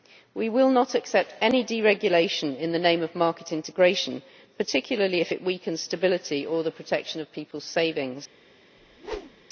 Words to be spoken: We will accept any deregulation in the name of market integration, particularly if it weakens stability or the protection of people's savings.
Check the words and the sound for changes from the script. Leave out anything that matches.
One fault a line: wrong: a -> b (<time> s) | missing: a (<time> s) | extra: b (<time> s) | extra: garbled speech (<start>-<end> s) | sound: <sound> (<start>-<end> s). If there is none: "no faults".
extra: not (0.7 s)
sound: whoosh (8.8-9.4 s)